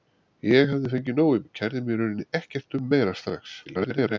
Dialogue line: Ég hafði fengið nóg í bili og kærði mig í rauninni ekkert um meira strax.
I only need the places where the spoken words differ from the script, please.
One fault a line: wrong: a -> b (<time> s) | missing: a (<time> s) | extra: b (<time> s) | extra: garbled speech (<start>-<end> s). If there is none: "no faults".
missing: bili (1.4 s)
extra: garbled speech (3.6-4.2 s)